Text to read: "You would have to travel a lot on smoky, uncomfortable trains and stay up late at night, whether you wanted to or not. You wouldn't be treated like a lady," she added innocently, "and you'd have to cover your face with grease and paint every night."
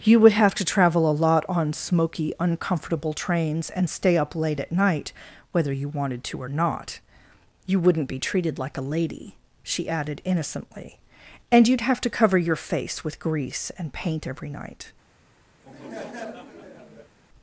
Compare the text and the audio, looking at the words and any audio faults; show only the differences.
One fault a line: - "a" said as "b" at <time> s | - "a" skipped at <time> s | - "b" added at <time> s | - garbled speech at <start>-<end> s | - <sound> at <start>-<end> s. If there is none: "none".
- laugh at 15.6-17.1 s